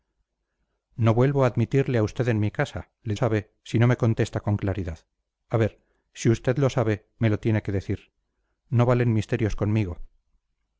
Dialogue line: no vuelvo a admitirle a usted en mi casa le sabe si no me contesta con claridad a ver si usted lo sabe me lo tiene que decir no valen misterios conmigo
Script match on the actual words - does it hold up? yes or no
yes